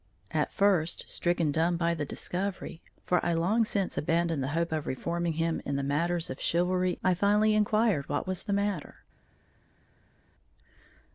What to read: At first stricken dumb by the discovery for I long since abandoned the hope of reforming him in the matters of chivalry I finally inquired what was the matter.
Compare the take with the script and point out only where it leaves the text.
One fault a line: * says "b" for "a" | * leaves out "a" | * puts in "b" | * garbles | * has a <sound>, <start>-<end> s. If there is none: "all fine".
all fine